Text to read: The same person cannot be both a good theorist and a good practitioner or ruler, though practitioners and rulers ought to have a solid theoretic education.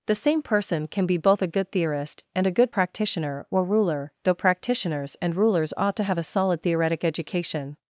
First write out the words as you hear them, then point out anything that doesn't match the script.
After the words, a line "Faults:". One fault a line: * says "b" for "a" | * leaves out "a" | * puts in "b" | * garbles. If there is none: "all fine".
The same person can be both a good theorist and a good practitioner or ruler, though practitioners and rulers ought to have a solid theoretic education.
Faults:
* says "can" for "cannot"